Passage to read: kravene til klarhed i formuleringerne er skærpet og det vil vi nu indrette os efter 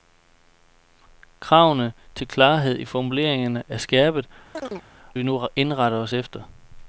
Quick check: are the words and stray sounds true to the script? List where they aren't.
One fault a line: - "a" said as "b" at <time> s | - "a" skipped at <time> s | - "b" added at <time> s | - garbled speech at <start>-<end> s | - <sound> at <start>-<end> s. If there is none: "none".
- "og det vil" skipped at 4.3 s
- chirp at 4.5-4.9 s